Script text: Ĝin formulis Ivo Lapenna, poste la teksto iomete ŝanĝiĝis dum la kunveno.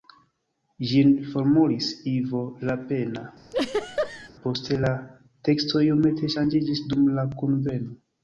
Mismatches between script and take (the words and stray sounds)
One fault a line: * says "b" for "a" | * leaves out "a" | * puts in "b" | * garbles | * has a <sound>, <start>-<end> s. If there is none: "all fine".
* has a laugh, 3.5-4.3 s